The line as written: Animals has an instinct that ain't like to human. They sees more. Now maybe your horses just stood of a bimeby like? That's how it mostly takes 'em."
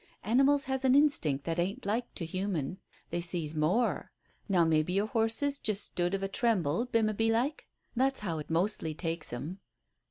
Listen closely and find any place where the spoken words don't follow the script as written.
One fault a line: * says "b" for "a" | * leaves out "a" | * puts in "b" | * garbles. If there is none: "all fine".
* puts in "tremble"